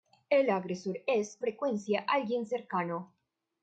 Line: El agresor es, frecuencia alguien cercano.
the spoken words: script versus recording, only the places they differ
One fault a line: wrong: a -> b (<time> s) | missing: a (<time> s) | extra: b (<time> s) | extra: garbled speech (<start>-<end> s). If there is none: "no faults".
no faults